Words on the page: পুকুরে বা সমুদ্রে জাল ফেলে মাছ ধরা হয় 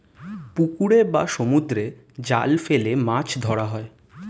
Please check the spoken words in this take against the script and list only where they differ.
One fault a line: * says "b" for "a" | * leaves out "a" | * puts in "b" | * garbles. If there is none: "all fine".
all fine